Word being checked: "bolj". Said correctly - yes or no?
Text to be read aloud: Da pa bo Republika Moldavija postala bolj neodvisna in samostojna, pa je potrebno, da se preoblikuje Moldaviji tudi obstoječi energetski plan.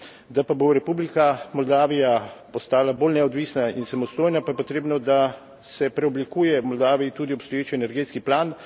yes